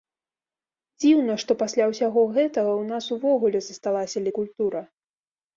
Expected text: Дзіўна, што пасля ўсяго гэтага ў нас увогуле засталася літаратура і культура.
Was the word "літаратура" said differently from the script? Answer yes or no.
yes